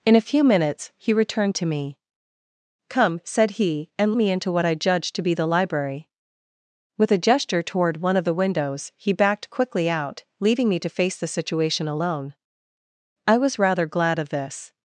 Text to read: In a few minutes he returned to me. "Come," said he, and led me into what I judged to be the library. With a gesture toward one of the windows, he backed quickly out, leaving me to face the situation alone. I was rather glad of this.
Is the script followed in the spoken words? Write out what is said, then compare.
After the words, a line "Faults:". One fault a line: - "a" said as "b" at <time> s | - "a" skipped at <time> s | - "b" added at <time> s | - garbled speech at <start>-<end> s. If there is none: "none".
In a few minutes he returned to me. "Come," said he, and me into what I judged to be the library. With a gesture toward one of the windows, he backed quickly out, leaving me to face the situation alone. I was rather glad of this.
Faults:
- "led" skipped at 4.1 s